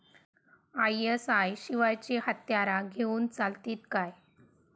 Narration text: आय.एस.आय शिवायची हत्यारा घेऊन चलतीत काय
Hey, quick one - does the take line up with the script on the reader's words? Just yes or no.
yes